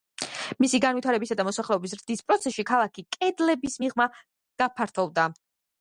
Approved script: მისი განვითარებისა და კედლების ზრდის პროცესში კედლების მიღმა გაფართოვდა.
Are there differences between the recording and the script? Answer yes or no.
yes